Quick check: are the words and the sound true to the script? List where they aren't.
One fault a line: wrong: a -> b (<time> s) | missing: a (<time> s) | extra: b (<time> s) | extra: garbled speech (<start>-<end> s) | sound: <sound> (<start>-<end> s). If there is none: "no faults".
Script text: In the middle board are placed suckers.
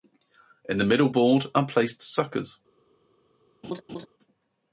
sound: laugh (3.6-4.1 s)